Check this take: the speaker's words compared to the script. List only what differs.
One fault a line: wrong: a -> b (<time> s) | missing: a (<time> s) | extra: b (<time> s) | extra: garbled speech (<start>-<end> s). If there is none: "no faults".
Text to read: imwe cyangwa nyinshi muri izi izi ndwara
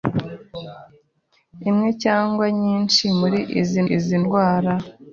no faults